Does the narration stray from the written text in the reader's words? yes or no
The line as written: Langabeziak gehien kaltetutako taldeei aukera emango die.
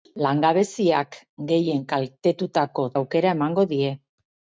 yes